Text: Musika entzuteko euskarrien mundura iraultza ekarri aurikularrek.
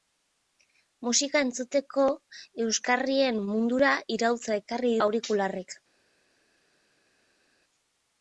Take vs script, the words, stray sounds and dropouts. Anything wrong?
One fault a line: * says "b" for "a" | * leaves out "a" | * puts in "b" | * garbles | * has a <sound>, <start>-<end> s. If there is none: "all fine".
all fine